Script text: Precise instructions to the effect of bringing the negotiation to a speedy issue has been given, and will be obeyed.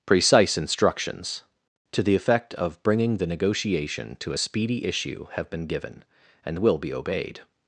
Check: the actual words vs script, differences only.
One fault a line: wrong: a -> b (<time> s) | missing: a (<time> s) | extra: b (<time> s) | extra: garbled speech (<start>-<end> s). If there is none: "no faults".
wrong: has -> have (5.3 s)